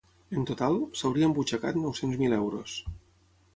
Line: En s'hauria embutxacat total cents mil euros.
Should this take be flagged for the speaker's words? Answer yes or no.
yes